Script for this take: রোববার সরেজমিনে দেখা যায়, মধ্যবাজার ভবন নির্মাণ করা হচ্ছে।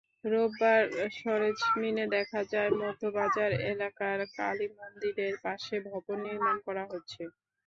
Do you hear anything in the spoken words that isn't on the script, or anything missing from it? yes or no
yes